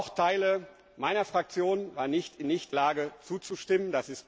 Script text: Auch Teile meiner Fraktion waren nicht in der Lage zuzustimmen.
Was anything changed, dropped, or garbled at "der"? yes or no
yes